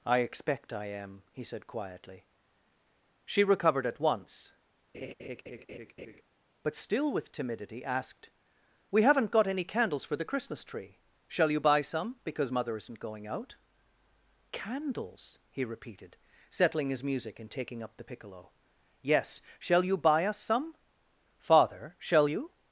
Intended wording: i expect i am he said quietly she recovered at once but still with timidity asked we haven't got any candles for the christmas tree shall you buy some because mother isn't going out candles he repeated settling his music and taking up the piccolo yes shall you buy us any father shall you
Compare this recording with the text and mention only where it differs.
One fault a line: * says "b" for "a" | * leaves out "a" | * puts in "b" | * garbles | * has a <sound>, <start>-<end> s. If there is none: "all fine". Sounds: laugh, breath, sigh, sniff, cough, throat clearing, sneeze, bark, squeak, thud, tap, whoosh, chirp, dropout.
* has a laugh, 4.9-6.2 s
* says "some" for "any"